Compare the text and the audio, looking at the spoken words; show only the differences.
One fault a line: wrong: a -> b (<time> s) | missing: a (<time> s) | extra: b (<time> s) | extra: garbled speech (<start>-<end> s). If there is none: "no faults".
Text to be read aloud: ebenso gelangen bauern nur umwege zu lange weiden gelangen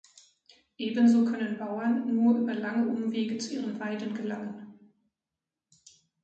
wrong: gelangen -> können (1.2 s)
extra: über lange (2.4 s)
wrong: lange -> ihren (3.6 s)